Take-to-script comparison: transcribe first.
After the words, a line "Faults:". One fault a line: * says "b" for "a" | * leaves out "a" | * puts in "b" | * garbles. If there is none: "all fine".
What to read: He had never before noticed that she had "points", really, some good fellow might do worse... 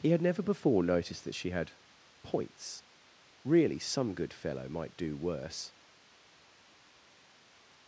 He had never before noticed that she had "points", really, some good fellow might do worse...
Faults:
all fine